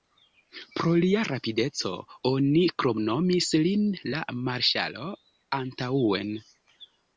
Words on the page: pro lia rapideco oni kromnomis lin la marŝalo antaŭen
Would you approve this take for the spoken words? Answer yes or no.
yes